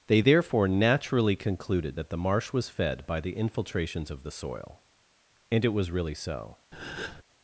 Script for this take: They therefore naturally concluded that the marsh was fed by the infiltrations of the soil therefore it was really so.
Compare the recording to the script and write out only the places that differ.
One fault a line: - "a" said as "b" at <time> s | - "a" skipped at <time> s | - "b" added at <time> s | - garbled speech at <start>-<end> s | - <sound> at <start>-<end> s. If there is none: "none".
- "therefore" said as "and" at 5.5 s
- breath at 6.7-7.2 s